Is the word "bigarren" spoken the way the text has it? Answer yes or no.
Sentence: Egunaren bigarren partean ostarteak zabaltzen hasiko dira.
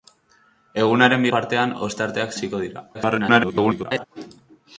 no